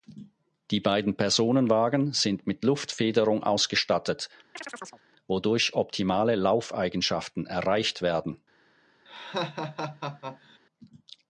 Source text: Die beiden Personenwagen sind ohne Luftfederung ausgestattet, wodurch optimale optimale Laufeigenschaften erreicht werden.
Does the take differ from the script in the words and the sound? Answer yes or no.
yes